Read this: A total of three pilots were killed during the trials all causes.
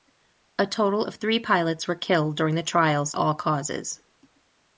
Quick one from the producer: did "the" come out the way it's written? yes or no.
yes